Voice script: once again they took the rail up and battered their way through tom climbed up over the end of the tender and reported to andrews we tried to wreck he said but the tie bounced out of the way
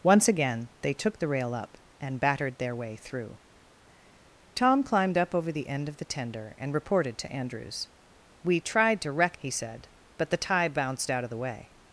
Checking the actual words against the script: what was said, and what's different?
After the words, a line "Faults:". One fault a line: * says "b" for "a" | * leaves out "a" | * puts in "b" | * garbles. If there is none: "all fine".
once again they took the rail up and battered their way through tom climbed up over the end of the tender and reported to andrews we tried to wreck he said but the tie bounced out of the way
Faults:
all fine